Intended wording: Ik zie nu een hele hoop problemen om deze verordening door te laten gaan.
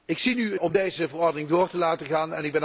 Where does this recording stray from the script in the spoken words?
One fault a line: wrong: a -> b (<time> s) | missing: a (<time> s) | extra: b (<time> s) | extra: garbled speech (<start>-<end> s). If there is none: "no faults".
missing: hele hoop problemen (0.6 s)